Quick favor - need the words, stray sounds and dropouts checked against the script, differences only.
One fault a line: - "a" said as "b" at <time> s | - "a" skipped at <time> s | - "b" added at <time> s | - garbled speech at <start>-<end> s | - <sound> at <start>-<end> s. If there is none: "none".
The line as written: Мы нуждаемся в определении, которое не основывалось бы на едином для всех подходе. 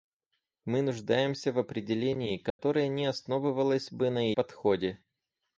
- dropout at 2.5-2.6 s
- "едином для всех" skipped at 4.3 s